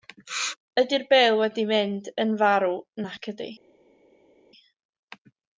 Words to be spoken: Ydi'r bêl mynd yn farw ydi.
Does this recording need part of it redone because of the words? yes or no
yes